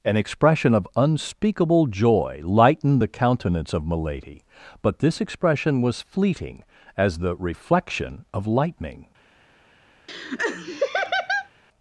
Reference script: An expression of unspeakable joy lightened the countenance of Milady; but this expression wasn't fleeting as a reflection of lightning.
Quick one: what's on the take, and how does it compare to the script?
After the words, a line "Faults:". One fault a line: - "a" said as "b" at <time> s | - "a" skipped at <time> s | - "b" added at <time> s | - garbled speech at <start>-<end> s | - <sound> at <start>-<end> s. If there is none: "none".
An expression of unspeakable joy lightened the countenance of Milady; but this expression was fleeting as the reflection of lightning.
Faults:
- "wasn't" said as "was" at 5.8 s
- "a" said as "the" at 7.2 s
- laugh at 10.1-11.5 s